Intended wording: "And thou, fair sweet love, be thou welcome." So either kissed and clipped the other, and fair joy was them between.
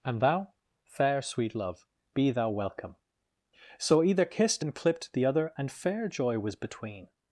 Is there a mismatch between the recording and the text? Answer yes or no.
yes